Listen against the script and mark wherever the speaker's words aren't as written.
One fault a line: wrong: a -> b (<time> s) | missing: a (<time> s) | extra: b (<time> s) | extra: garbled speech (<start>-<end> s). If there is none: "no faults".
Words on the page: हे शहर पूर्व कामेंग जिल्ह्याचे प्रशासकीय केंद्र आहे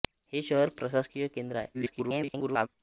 missing: पूर्व कामेंग जिल्ह्याचे (0.7 s)
extra: garbled speech (1.7-2.7 s)